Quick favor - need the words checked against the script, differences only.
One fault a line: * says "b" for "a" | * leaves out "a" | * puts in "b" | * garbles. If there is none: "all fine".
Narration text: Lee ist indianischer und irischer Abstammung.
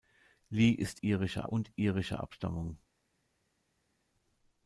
* says "irischer" for "indianischer"